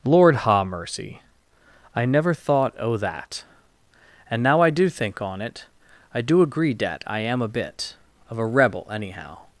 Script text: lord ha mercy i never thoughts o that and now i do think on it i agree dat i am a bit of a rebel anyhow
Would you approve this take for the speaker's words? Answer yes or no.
no